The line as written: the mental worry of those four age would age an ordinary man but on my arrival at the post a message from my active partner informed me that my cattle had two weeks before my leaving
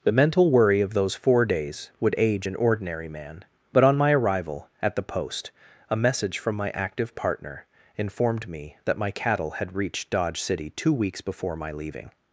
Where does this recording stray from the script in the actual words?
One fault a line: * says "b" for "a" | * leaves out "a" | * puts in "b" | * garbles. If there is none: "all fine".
* says "days" for "age"
* puts in "reached dodge city"